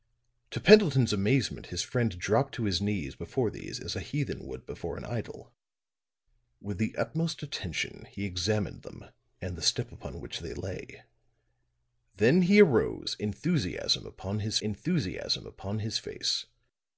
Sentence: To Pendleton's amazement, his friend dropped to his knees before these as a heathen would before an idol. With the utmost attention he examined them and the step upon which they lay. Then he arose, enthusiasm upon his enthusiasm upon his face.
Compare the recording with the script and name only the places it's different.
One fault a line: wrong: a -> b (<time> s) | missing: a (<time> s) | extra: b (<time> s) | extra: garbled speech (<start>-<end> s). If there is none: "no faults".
no faults